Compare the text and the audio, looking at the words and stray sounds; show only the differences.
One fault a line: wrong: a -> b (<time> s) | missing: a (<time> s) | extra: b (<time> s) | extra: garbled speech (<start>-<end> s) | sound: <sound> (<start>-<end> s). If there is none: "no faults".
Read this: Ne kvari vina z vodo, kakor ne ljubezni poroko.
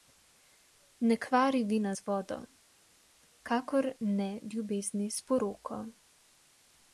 extra: s (5.1 s)